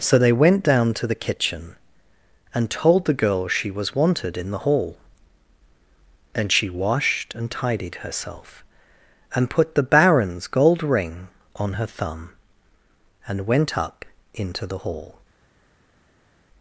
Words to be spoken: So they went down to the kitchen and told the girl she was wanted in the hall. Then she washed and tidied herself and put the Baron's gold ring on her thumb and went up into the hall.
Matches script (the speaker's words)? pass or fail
fail